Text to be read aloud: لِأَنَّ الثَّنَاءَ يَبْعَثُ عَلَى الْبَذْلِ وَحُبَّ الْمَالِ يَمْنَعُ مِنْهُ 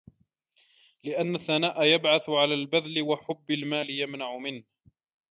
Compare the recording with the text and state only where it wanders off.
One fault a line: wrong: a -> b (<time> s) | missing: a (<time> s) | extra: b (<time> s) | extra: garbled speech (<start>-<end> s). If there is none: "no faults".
no faults